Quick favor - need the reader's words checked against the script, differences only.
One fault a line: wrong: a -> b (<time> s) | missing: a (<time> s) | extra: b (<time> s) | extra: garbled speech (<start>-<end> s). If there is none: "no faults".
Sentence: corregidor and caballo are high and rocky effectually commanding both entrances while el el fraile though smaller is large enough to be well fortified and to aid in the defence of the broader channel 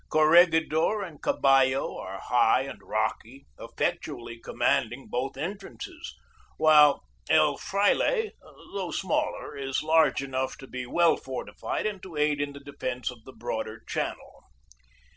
missing: el (7.5 s)